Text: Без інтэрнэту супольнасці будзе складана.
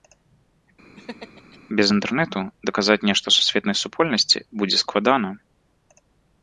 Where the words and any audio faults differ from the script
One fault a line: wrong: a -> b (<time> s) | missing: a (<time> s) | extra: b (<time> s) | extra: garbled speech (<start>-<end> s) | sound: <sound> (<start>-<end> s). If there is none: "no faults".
sound: laugh (1.0-1.6 s)
extra: даказаць нешта сусветнай (2.7 s)